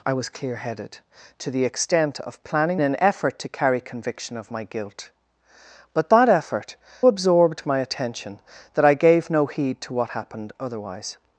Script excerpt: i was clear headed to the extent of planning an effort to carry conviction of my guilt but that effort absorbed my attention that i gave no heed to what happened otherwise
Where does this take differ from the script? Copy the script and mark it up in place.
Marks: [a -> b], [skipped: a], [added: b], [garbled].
i was clear headed to the extent of planning an effort to carry conviction of my guilt but that effort absorbed my attention that i gave no heed to what happened otherwise